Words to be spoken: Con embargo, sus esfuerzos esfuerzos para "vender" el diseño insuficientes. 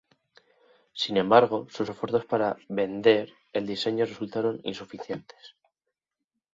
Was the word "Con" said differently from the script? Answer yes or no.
yes